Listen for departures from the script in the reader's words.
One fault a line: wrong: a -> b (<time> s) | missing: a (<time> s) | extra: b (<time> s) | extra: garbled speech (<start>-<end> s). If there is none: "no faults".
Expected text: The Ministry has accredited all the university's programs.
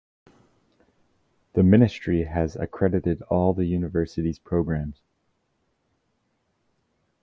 no faults